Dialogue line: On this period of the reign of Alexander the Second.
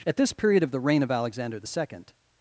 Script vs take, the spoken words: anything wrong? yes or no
yes